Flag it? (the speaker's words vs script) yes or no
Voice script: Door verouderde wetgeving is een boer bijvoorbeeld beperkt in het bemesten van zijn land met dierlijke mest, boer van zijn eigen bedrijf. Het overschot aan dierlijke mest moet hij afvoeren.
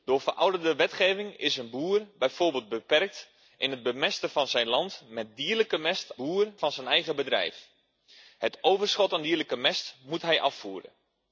no